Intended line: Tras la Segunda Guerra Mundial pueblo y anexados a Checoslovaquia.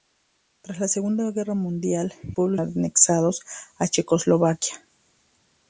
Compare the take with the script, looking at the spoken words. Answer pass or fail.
pass